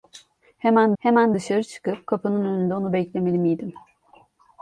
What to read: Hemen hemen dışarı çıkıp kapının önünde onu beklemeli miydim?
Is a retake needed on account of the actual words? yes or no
no